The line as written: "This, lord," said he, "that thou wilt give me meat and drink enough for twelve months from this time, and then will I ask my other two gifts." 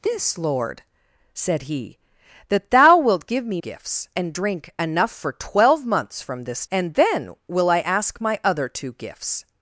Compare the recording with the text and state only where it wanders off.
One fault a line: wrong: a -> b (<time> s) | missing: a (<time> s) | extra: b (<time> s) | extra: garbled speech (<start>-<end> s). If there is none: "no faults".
wrong: meat -> gifts (3.6 s)
missing: time (6.7 s)